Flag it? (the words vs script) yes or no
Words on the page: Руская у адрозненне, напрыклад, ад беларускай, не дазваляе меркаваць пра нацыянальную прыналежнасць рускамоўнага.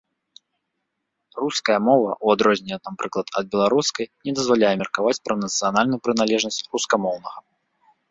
yes